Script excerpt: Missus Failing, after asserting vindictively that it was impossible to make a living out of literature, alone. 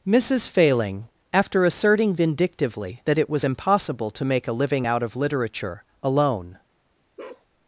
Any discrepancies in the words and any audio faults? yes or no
yes